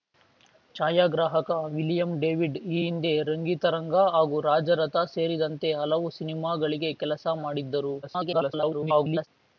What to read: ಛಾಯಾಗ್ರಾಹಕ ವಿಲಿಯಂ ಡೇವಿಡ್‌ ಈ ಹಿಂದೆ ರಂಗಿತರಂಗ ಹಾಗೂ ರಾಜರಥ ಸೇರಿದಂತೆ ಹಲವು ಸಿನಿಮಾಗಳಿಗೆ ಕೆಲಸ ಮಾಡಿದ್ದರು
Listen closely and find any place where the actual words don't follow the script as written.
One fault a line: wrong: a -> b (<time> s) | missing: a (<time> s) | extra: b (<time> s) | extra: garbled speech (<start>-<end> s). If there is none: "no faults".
extra: garbled speech (8.0-9.3 s)